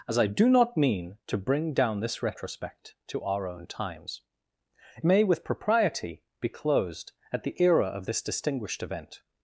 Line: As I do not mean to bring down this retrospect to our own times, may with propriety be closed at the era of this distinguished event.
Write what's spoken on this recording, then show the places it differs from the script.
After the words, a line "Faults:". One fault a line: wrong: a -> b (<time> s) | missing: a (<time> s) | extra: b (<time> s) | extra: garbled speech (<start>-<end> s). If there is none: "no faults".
As I do not mean to bring down this retrospect to our own times, may with propriety be closed at the era of this distinguished event.
Faults:
no faults